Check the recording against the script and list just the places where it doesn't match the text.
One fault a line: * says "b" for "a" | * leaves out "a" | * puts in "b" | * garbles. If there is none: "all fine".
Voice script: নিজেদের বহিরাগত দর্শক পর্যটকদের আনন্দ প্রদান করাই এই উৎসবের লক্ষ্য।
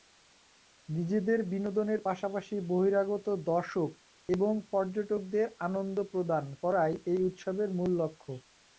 * puts in "বিনোদনের পাশাপাশি"
* puts in "এবং"
* puts in "মূল"